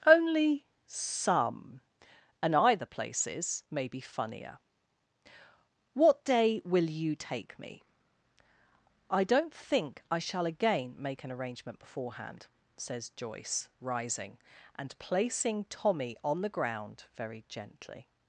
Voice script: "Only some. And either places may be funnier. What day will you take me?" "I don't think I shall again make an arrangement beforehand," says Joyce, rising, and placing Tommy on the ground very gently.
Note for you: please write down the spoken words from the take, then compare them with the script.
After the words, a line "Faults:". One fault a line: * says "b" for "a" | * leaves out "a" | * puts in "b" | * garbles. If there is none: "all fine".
"Only some. And either places may be funnier. What day will you take me?" "I don't think I shall again make an arrangement beforehand," says Joyce, rising, and placing Tommy on the ground very gently.
Faults:
all fine